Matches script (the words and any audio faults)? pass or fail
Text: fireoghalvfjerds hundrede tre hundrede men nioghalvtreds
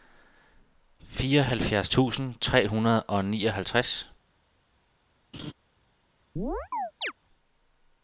fail